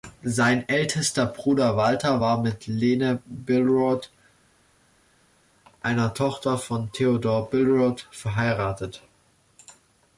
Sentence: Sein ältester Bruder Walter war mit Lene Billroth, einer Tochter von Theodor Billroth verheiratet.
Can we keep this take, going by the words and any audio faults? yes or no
yes